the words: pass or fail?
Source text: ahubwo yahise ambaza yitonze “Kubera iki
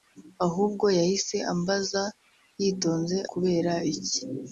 pass